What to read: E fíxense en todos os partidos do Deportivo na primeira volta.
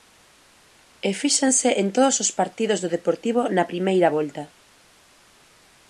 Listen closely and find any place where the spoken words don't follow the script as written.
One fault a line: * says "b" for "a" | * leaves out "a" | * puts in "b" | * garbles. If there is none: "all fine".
all fine